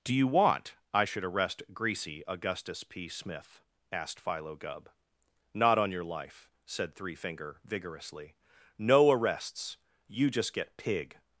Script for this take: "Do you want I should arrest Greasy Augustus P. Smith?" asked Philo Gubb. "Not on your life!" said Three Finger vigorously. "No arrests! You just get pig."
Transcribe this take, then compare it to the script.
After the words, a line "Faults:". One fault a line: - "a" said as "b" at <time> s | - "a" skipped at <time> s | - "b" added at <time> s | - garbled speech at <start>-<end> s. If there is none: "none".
"Do you want I should arrest Greasy Augustus P. Smith?" asked Philo Gubb. "Not on your life!" said Three Finger vigorously. "No arrests! You just get pig."
Faults:
none